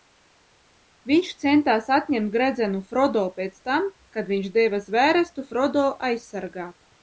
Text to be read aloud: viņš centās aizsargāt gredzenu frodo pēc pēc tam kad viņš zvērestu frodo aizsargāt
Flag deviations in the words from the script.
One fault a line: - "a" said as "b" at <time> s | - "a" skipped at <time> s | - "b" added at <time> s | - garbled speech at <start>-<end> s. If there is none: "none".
- "aizsargāt" said as "atņemt" at 2.0 s
- "pēc" skipped at 3.6 s
- "deva" added at 4.6 s